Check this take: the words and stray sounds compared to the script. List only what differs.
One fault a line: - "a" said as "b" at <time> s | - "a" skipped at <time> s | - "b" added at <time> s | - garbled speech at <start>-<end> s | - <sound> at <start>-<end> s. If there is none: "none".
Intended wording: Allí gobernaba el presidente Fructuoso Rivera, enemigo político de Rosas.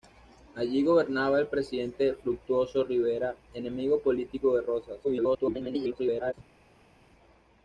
- garbled speech at 5.0-6.3 s